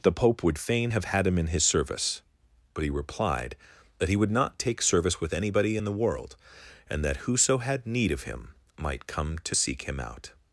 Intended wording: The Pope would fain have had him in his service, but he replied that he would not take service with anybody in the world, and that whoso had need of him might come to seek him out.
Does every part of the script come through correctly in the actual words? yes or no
yes